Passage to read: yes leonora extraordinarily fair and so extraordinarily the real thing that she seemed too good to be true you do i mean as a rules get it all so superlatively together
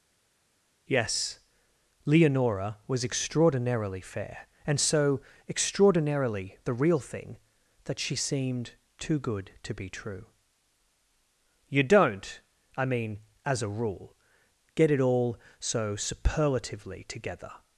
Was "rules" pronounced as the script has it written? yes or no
no